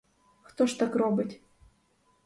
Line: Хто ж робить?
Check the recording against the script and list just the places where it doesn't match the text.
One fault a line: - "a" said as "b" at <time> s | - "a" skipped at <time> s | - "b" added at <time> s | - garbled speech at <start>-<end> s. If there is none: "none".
- "так" added at 0.8 s